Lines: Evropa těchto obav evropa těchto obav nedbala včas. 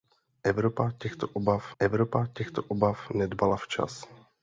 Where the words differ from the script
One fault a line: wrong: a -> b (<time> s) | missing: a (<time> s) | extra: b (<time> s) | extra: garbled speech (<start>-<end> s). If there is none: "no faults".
no faults